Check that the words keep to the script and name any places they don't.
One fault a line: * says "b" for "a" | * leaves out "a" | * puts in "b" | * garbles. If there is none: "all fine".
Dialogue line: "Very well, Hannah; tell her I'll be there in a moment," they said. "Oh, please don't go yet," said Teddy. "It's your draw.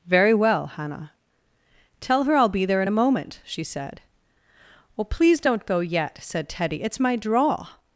* says "she" for "they"
* says "my" for "your"